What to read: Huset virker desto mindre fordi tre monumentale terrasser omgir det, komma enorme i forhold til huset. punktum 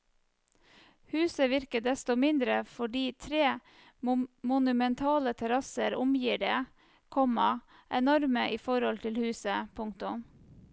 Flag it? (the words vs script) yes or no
no